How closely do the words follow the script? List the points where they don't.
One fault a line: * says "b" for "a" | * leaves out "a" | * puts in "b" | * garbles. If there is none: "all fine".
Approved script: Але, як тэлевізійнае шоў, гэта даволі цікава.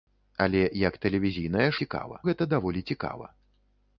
* says "цікава" for "шоў"